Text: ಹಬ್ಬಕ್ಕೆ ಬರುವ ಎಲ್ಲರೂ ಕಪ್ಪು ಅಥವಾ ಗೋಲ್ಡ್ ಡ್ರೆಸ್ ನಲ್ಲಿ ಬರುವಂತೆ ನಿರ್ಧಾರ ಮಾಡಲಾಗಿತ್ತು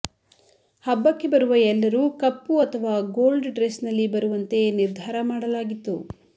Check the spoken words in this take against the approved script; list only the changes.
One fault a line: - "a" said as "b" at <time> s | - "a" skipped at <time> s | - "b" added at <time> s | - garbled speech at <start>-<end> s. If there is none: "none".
none